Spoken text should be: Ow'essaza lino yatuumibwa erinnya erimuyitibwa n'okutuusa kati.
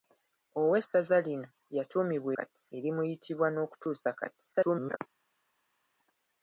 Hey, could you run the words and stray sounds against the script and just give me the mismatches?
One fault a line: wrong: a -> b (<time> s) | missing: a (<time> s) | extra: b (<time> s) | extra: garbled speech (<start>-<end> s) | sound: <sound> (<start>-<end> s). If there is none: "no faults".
wrong: erinnya -> kati (2.4 s)
extra: garbled speech (4.5-5.0 s)